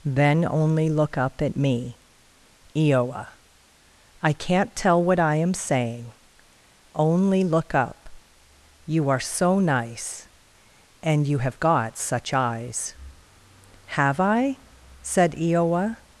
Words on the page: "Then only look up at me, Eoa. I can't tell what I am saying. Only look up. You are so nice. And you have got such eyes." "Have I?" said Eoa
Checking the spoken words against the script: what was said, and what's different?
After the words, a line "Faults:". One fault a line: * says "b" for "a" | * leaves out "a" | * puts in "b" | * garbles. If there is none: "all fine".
"Then only look up at me, Eoa. I can't tell what I am saying. Only look up. You are so nice. And you have got such eyes." "Have I?" said Eoa
Faults:
all fine